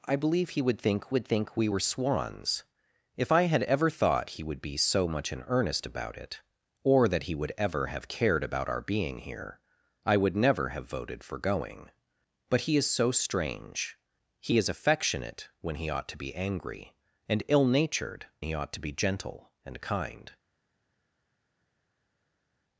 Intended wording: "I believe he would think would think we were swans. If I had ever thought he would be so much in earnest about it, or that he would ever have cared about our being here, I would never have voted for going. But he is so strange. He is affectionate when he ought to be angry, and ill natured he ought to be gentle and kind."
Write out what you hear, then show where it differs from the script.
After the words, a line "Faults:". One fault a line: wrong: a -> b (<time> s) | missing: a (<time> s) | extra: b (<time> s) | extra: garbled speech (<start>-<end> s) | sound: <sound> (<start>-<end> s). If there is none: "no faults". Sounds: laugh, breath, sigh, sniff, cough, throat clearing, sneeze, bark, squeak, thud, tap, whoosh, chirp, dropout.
"I believe he would think would think we were swans. If I had ever thought he would be so much in earnest about it, or that he would ever have cared about our being here, I would never have voted for going. But he is so strange. He is affectionate when he ought to be angry, and ill natured he ought to be gentle and kind."
Faults:
no faults